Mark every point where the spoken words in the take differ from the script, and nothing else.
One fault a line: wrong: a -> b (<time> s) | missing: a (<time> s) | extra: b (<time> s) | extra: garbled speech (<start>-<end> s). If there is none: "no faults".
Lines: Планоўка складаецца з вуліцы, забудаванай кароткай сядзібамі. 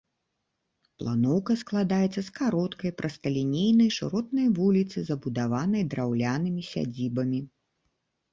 extra: кароткай прасталінейнай шыротнай (2.4 s)
wrong: кароткай -> драўлянымі (6.0 s)